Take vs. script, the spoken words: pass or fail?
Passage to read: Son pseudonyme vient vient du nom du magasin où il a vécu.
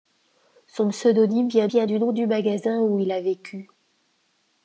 pass